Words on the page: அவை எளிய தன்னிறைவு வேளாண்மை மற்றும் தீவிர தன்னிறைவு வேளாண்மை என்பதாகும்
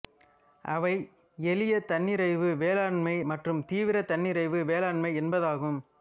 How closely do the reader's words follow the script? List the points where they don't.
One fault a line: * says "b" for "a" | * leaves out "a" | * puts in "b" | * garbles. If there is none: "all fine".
all fine